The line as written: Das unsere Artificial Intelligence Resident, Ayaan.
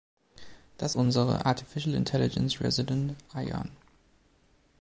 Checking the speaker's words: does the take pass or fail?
pass